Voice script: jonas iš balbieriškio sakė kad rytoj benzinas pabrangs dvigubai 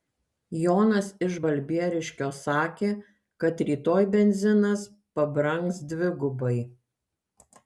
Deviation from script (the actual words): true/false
false